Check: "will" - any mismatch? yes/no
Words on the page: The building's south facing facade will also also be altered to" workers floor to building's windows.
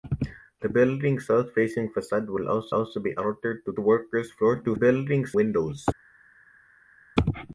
no